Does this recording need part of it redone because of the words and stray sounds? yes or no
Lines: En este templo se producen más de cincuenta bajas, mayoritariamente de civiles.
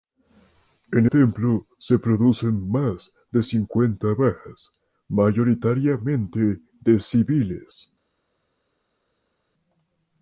yes